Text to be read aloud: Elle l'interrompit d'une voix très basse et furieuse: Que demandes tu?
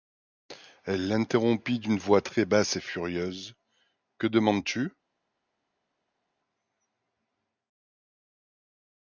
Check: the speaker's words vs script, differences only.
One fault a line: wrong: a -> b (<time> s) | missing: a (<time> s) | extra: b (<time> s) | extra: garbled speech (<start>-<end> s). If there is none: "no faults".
no faults